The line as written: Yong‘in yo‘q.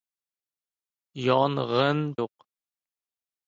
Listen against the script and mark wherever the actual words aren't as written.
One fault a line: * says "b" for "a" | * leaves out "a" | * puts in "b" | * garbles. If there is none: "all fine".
all fine